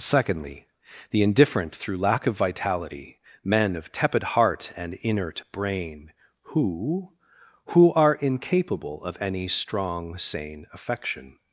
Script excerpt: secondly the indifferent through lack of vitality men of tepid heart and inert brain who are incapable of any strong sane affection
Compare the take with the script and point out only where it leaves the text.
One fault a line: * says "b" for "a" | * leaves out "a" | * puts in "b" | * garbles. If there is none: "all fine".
* puts in "who"